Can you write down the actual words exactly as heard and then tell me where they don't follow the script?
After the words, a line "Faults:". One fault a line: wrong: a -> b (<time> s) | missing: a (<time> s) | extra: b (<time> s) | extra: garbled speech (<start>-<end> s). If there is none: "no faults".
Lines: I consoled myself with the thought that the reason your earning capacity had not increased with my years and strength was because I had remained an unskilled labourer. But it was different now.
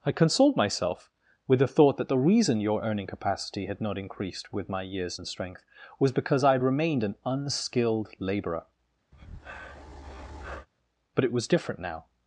I consoled myself with the thought that the reason your earning capacity had not increased with my years and strength was because I had remained an unskilled labourer. But it was different now.
Faults:
no faults